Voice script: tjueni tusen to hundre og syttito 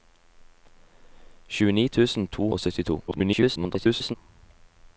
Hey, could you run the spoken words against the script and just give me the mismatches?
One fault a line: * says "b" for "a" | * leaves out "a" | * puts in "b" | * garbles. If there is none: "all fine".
* leaves out "hundre"
* garbles